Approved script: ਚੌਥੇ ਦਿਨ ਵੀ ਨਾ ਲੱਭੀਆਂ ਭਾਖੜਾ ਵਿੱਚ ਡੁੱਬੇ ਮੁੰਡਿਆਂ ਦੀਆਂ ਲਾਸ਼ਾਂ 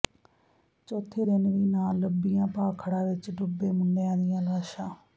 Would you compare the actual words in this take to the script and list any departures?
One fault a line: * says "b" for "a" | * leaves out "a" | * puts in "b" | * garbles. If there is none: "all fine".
all fine